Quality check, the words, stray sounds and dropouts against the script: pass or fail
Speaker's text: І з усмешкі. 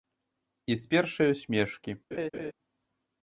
fail